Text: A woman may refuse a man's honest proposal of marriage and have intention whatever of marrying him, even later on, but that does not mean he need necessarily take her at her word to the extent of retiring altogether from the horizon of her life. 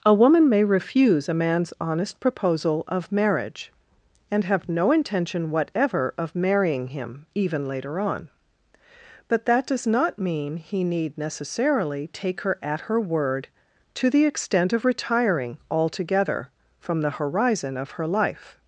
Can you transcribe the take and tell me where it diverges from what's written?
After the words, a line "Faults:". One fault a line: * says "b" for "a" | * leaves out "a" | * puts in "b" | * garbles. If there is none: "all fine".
A woman may refuse a man's honest proposal of marriage and have no intention whatever of marrying him, even later on, but that does not mean he need necessarily take her at her word to the extent of retiring altogether from the horizon of her life.
Faults:
* puts in "no"